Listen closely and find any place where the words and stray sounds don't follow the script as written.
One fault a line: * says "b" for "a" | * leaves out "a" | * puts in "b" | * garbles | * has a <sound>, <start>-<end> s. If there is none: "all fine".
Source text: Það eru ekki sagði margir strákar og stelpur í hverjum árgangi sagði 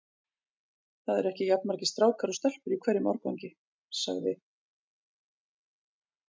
* says "jafn" for "sagði"